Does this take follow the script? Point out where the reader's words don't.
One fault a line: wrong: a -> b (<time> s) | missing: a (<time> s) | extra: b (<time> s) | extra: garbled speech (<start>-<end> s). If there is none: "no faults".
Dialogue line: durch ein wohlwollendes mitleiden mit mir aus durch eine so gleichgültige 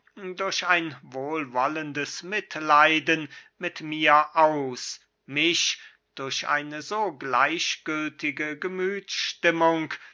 extra: mich (5.3 s)